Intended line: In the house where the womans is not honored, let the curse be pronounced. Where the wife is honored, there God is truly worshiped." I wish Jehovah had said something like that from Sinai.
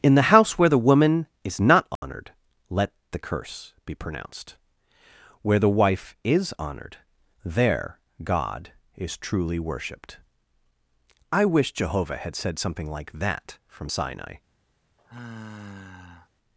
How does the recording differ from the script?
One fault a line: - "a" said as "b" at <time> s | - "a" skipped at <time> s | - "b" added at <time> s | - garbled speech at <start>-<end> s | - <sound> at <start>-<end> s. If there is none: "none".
- "womans" said as "woman" at 0.8 s
- dropout at 2.0-2.0 s
- sigh at 15.0-16.3 s